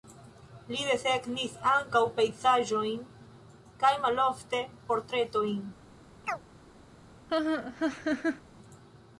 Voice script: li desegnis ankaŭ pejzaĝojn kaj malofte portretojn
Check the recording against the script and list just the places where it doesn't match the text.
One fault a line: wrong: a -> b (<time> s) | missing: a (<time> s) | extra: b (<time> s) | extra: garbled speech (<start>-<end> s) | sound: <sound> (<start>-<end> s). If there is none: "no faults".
sound: chirp (6.2-6.4 s)
sound: laugh (7.3-8.4 s)